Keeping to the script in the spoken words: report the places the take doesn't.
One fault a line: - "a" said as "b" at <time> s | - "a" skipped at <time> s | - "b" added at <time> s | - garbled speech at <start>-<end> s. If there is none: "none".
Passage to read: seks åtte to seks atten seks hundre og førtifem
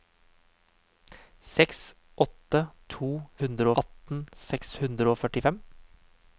- "seks" said as "hundre" at 3.4 s